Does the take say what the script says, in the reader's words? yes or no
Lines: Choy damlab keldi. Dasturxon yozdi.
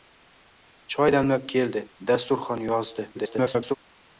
no